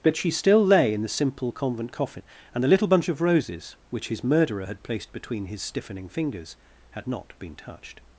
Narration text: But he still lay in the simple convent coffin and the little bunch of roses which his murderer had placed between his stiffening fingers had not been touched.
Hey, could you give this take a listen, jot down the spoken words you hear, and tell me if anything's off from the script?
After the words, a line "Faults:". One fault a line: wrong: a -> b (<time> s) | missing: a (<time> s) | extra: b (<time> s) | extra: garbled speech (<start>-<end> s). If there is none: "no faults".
But she still lay in the simple convent coffin and the little bunch of roses which his murderer had placed between his stiffening fingers had not been touched.
Faults:
wrong: he -> she (0.1 s)